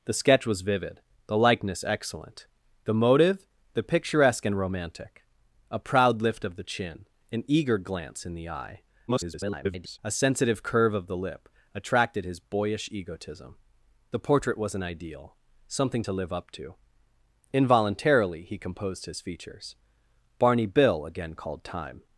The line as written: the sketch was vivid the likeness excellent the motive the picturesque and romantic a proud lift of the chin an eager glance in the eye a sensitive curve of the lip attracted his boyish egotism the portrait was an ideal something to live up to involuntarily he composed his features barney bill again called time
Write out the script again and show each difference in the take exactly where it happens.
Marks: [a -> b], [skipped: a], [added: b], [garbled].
the sketch was vivid the likeness excellent the motive the picturesque and romantic a proud lift of the chin an eager glance in the eye [garbled] a sensitive curve of the lip attracted his boyish egotism the portrait was an ideal something to live up to involuntarily he composed his features barney bill again called time